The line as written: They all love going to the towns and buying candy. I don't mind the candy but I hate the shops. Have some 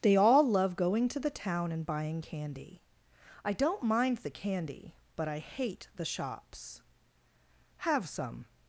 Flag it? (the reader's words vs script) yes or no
yes